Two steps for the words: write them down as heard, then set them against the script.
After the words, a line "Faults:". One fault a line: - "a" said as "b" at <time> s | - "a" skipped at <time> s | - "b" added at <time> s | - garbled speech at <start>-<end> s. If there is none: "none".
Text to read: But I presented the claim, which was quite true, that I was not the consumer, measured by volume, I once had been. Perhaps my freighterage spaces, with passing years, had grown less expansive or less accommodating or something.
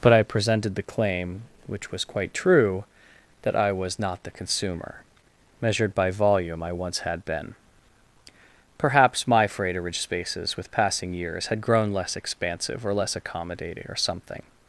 But I presented the claim, which was quite true, that I was not the consumer, measured by volume, I once had been. Perhaps my freighterage spaces, with passing years, had grown less expansive or less accommodating or something.
Faults:
none